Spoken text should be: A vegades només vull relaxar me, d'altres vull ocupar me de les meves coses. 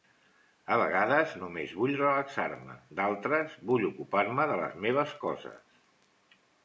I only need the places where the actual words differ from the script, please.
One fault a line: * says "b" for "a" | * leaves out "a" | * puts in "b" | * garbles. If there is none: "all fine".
all fine